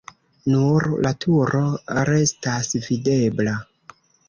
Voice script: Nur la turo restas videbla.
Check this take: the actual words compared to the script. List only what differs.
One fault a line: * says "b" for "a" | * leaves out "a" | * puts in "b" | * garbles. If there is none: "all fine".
all fine